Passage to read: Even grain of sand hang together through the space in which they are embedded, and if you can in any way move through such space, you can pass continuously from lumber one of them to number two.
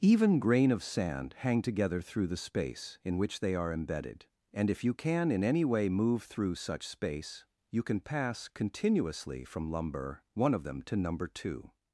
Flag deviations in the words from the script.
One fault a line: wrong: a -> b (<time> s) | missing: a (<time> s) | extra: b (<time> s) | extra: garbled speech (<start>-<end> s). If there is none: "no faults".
no faults